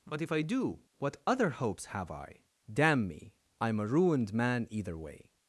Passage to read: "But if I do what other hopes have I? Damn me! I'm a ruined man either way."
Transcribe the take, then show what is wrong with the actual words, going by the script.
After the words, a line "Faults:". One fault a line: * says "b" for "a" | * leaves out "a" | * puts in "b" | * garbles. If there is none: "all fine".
"But if I do what other hopes have I? Damn me! I'm a ruined man either way."
Faults:
all fine